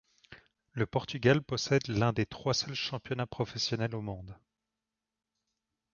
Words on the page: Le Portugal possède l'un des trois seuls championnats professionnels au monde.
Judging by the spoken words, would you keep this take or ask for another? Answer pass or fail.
pass